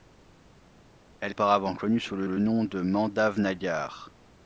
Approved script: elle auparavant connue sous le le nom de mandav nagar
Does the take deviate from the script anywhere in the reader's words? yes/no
no